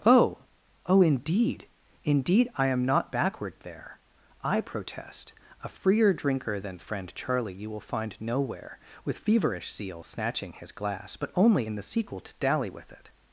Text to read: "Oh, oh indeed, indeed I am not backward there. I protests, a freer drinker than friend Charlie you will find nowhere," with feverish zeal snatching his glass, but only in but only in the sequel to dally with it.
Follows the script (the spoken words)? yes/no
no